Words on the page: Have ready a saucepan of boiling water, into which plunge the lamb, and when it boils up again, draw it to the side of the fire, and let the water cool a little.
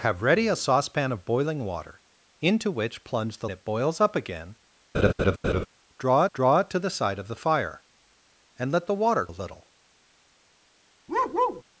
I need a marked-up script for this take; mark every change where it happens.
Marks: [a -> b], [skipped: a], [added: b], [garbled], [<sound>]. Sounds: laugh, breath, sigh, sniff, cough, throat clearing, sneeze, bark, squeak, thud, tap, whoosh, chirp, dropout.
Have ready a saucepan of boiling water, into which plunge the [skipped: lamb, and when] it boils up again, [laugh] draw [added: draw] it to the side of the fire, and let the water [skipped: cool] a little. [bark]